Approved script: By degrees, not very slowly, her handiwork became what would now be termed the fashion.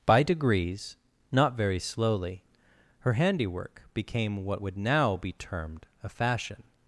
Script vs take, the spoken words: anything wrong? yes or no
yes